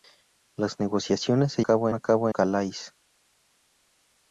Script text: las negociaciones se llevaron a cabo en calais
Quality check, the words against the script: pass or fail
fail